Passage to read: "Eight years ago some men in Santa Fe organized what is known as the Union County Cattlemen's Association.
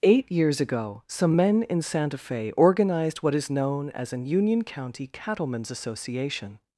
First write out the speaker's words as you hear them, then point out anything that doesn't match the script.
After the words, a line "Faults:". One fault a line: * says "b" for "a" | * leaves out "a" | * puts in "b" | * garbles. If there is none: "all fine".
"Eight years ago some men in Santa Fe organized what is known as an Union County Cattlemen's Association.
Faults:
* says "an" for "the"